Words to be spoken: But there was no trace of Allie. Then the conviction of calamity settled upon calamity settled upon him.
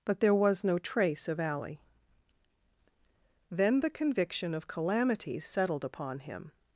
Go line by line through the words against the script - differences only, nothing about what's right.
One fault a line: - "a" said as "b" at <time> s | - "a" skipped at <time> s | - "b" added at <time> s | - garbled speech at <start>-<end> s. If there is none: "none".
- "calamity settled upon" skipped at 6.2 s